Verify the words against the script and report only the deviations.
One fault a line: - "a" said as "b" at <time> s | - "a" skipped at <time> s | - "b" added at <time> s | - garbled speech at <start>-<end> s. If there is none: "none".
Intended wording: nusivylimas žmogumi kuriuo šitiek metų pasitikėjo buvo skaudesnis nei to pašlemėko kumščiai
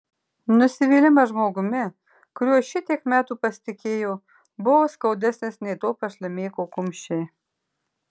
none